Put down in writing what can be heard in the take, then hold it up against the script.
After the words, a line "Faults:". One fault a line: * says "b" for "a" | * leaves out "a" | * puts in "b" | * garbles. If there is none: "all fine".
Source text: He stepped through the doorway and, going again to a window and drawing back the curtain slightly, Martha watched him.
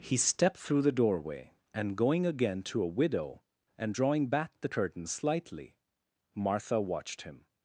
He stepped through the doorway and, going again to a widow and drawing back the curtain slightly, Martha watched him.
Faults:
* says "widow" for "window"